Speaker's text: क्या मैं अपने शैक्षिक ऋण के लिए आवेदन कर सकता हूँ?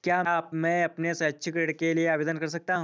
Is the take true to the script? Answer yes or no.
yes